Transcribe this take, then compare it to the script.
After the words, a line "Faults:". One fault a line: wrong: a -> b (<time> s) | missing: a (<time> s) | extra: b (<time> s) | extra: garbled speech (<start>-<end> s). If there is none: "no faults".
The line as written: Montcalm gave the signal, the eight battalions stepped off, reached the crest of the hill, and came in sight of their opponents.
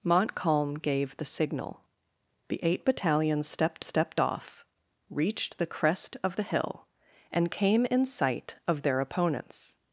Montcalm gave the signal, the eight battalions stepped stepped off, reached the crest of the hill, and came in sight of their opponents.
Faults:
extra: stepped (3.8 s)